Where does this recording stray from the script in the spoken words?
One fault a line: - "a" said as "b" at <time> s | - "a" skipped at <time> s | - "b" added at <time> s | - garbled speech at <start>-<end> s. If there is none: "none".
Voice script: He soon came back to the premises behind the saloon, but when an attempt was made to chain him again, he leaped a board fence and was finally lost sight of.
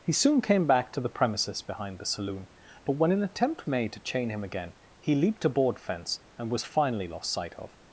- "was" skipped at 3.7 s